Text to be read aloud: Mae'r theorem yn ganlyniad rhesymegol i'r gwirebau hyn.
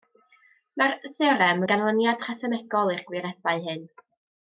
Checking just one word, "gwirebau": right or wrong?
right